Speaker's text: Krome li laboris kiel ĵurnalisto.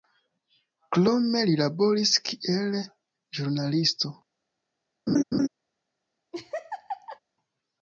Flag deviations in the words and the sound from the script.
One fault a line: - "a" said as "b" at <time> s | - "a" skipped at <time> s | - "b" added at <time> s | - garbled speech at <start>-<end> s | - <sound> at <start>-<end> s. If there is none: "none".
- laugh at 5.1-5.5 s
- laugh at 6.3-7.2 s